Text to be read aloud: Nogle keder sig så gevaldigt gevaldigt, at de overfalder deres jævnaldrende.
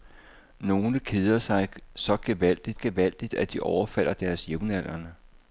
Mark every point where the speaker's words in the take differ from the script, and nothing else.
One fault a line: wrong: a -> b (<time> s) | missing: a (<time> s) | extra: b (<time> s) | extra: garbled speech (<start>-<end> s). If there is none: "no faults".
no faults